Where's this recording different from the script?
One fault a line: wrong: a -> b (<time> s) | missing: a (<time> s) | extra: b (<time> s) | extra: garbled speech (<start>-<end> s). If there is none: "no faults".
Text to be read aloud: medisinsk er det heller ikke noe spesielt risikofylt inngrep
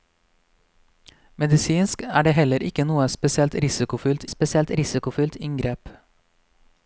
extra: spesielt risikofylt (4.3 s)